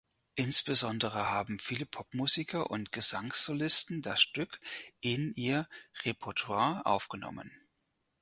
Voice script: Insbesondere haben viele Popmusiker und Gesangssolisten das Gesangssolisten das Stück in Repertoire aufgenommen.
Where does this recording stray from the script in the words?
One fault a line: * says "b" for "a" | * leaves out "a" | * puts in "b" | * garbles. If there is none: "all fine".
* leaves out "Gesangssolisten das"
* puts in "ihr"